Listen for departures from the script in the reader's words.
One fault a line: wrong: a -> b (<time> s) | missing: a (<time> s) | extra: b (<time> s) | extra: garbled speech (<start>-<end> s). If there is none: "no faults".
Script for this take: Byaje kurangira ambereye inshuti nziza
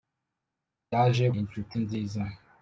missing: kurangira ambereye (1.2 s)